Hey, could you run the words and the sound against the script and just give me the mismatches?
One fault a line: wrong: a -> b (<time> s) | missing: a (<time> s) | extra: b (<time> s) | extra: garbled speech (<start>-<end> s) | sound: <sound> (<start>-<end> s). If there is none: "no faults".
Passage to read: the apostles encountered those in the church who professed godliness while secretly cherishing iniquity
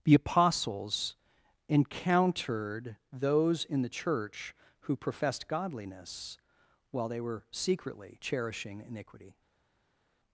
extra: they were (7.1 s)